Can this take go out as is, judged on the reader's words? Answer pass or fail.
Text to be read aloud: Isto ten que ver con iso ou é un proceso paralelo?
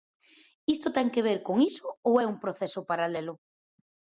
pass